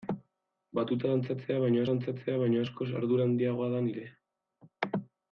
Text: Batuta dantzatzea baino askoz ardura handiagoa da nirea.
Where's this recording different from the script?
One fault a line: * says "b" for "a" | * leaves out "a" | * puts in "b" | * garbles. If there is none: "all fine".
* puts in "dantzatzea baino"